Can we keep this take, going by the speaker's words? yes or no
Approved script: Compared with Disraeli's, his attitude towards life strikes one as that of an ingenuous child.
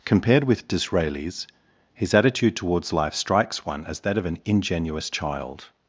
yes